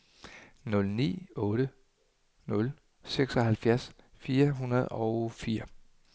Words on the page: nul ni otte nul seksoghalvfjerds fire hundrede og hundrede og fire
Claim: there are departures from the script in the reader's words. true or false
true